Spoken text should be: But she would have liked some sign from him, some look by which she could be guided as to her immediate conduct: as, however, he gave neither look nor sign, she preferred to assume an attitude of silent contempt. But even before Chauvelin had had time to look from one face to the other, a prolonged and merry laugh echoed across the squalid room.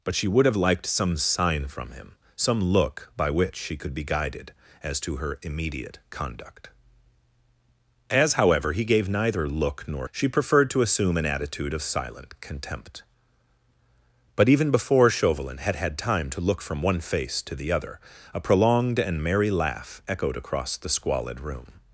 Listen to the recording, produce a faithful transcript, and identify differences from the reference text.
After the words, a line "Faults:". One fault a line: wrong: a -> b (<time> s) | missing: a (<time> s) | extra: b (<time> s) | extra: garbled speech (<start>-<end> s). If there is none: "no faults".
But she would have liked some sign from him, some look by which she could be guided as to her immediate conduct: as, however, he gave neither look nor she preferred to assume an attitude of silent contempt. But even before Chauvelin had had time to look from one face to the other, a prolonged and merry laugh echoed across the squalid room.
Faults:
missing: sign (10.1 s)